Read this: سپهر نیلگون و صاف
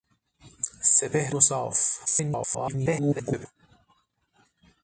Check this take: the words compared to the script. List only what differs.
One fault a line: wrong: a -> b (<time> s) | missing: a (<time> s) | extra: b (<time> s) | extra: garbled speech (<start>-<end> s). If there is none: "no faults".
missing: نیلگون (1.4 s)
extra: garbled speech (2.1-3.5 s)